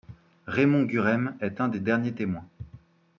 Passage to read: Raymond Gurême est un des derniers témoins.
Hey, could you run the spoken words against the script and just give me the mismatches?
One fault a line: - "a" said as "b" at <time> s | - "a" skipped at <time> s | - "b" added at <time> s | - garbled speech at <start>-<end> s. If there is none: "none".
none